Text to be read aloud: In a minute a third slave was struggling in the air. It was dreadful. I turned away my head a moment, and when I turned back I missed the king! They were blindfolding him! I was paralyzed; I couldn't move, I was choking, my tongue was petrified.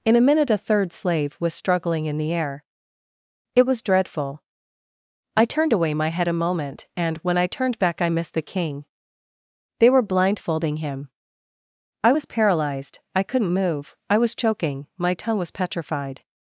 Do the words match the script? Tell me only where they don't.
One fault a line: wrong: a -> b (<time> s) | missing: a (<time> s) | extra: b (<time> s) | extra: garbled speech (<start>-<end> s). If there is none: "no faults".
no faults